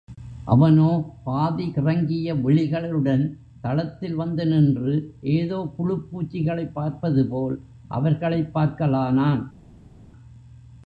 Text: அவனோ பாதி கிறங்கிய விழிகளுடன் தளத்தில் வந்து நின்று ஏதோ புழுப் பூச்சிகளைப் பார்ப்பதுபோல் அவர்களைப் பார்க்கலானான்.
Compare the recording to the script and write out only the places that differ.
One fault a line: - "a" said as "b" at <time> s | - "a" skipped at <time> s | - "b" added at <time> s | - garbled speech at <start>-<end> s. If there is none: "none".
none